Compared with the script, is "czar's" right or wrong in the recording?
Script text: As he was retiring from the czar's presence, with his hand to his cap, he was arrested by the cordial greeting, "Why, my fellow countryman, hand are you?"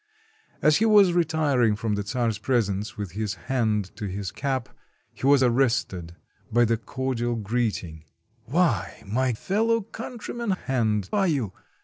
right